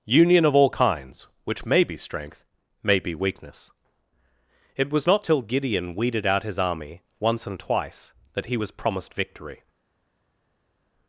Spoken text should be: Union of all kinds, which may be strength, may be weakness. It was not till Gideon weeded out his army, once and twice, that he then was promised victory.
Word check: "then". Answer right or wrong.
wrong